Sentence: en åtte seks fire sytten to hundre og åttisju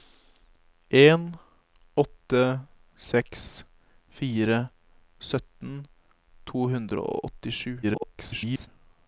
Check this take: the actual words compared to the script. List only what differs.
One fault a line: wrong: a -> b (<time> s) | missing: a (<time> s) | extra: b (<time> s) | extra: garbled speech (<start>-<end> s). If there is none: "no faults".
extra: garbled speech (7.8-8.7 s)